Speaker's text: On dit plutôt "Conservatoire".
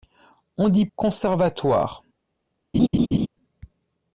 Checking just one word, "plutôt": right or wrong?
wrong